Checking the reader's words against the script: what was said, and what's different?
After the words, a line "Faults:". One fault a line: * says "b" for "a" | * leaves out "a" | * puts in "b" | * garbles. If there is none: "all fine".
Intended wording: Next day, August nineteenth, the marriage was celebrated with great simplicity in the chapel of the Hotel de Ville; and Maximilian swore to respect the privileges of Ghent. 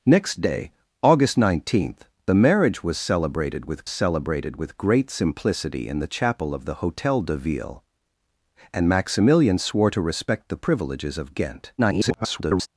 Next day, August nineteenth, the marriage was celebrated with celebrated with great simplicity in the chapel of the Hotel de Ville; and Maximilian swore to respect the privileges of Ghent. [garbled]
Faults:
* puts in "celebrated with"
* garbles